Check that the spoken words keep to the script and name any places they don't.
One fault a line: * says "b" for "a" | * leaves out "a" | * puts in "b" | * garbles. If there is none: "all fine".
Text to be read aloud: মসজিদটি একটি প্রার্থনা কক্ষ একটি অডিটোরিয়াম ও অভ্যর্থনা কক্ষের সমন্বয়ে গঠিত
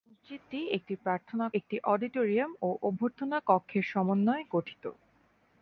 * leaves out "কক্ষ"